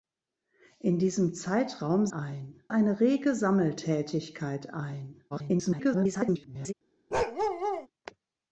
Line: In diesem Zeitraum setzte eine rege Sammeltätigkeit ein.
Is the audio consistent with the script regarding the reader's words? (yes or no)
no